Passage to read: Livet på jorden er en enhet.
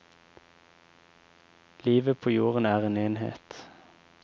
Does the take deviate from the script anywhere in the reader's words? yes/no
no